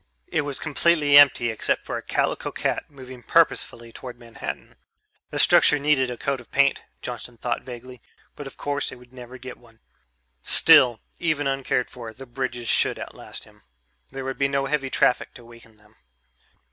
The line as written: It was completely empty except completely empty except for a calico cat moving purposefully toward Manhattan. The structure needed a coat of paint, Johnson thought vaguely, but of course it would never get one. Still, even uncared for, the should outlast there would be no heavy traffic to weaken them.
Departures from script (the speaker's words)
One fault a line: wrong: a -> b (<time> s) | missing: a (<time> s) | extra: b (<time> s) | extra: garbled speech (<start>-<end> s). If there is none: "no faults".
missing: completely empty except (1.9 s)
extra: bridges (12.3 s)
extra: him (13.4 s)